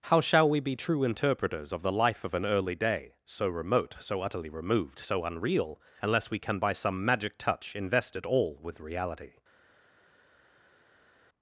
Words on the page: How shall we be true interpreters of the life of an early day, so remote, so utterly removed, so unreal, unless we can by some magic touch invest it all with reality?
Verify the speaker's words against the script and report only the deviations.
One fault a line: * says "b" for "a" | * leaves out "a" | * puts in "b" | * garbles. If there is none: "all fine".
all fine